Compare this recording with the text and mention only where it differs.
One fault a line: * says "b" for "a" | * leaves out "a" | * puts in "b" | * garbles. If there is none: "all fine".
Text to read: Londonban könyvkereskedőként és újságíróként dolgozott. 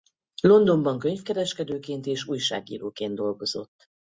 all fine